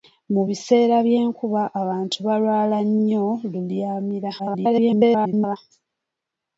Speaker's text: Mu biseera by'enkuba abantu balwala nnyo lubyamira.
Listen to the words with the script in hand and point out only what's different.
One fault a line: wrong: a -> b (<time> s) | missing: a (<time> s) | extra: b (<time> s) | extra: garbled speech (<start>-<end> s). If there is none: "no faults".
extra: garbled speech (4.4-5.6 s)